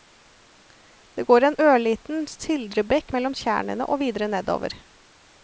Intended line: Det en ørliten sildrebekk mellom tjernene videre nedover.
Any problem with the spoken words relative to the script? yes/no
yes